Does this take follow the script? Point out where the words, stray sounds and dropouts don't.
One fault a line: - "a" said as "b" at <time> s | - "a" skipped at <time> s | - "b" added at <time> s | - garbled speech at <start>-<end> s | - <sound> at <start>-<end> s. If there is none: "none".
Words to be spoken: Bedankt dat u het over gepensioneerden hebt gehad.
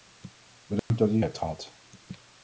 - dropout at 0.8-0.9 s
- "het over gepensioneerden" skipped at 1.2 s